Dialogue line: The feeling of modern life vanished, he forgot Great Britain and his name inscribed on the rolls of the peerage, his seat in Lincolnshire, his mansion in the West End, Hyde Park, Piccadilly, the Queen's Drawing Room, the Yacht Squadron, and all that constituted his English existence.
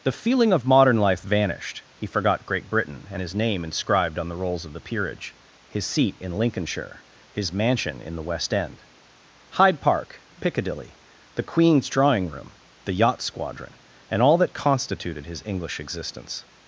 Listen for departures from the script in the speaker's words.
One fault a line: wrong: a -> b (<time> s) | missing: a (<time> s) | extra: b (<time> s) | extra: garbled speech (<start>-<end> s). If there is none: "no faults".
no faults